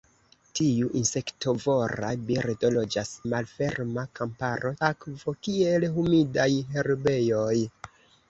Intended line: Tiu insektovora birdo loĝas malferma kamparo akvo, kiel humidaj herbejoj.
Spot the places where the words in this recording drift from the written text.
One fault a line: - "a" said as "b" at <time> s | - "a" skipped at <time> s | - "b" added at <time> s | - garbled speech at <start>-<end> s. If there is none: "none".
none